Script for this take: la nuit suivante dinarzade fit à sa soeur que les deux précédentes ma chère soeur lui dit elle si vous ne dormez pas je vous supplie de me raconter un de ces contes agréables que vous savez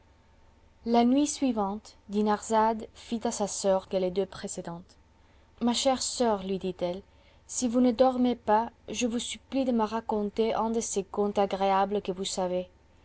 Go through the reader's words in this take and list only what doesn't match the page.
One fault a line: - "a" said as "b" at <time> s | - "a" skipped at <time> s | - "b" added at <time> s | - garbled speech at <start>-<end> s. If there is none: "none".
none